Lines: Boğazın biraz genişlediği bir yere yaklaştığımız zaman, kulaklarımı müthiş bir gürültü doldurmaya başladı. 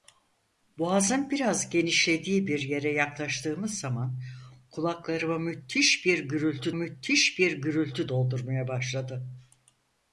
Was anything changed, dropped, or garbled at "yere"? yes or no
no